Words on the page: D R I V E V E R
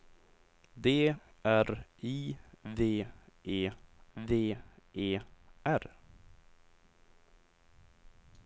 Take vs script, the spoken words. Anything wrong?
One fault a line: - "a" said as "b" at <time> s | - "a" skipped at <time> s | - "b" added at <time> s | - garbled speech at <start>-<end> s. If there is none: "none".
none